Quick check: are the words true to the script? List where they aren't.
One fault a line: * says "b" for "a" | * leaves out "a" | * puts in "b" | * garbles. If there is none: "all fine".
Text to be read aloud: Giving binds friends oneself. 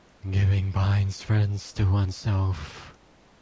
* puts in "to"